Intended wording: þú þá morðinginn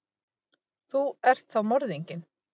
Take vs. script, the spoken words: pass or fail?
fail